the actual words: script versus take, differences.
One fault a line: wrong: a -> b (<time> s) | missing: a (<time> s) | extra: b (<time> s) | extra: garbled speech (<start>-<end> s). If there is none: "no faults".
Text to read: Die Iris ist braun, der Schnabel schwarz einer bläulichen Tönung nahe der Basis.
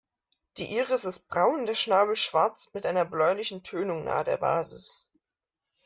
extra: mit (2.7 s)